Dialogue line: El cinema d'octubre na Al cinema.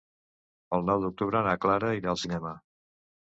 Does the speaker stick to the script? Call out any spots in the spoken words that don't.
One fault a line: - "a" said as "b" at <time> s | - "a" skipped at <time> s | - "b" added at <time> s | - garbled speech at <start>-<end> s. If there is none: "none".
- "cinema" said as "nou" at 0.9 s
- "Clara irà" added at 1.6 s